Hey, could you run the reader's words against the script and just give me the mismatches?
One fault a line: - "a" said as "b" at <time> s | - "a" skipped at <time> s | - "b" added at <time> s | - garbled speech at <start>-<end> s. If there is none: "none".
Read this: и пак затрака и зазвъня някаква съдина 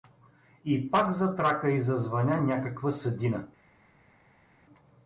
none